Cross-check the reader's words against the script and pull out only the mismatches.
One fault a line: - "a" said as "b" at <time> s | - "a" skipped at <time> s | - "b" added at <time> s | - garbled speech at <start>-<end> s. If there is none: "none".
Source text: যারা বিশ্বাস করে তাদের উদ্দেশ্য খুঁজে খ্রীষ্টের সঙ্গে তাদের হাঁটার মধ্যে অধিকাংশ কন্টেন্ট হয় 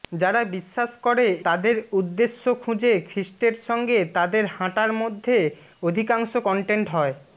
none